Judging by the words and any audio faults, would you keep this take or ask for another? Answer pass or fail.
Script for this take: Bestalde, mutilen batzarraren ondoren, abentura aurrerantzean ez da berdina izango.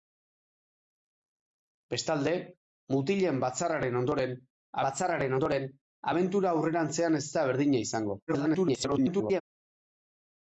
fail